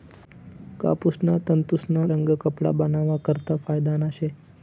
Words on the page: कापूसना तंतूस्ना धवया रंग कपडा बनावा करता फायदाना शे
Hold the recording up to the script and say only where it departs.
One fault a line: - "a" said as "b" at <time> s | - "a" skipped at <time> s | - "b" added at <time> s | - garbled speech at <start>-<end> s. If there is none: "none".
- "धवया" skipped at 2.0 s